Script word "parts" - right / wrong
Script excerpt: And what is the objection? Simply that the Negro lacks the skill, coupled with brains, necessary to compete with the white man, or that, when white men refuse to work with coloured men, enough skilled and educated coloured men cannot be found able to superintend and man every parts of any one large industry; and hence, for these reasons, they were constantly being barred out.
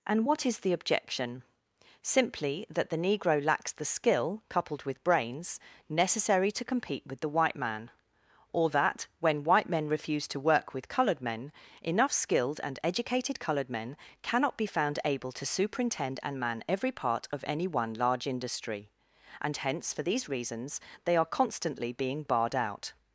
wrong